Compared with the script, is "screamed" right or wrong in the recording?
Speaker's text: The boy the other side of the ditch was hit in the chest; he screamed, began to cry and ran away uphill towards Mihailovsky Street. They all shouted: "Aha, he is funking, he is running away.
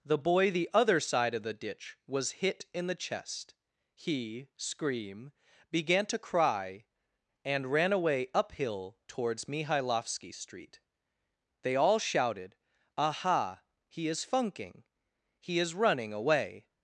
wrong